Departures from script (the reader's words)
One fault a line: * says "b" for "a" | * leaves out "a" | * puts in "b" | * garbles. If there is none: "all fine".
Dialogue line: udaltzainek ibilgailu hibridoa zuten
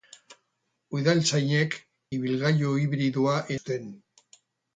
all fine